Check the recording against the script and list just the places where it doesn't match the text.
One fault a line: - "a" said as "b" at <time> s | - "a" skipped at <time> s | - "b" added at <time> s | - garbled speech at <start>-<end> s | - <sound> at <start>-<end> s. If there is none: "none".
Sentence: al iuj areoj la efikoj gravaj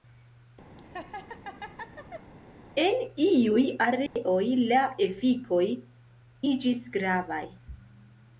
- laugh at 0.8-2.3 s
- "al" said as "en" at 2.8 s
- dropout at 4.1-4.2 s
- "iĝis" added at 6.5 s